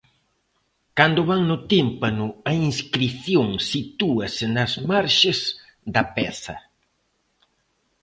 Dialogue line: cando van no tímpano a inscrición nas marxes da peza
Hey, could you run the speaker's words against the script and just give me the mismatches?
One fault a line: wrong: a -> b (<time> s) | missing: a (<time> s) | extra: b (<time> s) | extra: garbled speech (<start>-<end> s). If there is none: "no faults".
extra: sitúase (3.7 s)